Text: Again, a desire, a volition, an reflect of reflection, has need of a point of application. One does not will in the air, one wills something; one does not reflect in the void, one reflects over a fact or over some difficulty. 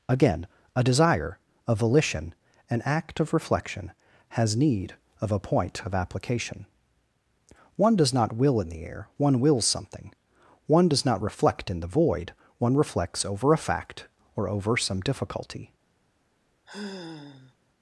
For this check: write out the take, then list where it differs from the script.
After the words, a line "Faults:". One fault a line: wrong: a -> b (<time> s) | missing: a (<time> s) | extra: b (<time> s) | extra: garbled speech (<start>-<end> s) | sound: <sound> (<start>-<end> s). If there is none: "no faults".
Again, a desire, a volition, an act of reflection, has need of a point of application. One does not will in the air, one wills something; one does not reflect in the void, one reflects over a fact or over some difficulty.
Faults:
wrong: reflect -> act (2.9 s)
sound: sigh (16.7-17.5 s)